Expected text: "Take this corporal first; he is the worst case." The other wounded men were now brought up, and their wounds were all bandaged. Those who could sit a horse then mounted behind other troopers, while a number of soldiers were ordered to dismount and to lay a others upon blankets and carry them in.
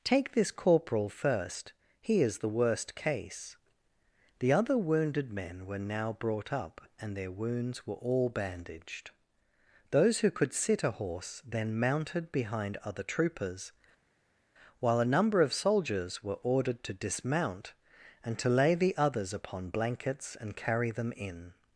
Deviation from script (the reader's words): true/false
true